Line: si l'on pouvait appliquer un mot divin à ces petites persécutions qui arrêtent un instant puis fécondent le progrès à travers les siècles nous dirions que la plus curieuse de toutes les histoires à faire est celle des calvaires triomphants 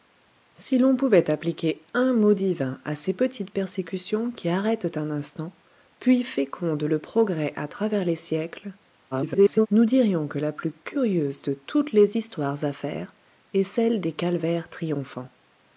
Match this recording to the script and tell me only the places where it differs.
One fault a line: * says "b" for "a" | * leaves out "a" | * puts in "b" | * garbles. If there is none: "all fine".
* garbles